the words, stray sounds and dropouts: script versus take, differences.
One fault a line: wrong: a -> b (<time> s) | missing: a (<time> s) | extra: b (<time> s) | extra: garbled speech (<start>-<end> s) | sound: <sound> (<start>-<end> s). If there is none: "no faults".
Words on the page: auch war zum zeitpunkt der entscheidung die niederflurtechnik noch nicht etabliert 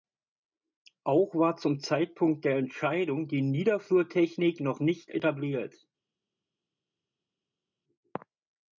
no faults